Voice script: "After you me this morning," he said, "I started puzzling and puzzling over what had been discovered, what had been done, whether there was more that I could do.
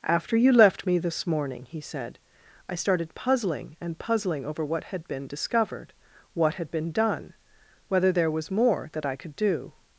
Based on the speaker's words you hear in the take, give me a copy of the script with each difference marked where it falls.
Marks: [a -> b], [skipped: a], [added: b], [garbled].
"After you [added: left] me this morning," he said, "I started puzzling and puzzling over what had been discovered, what had been done, whether there was more that I could do.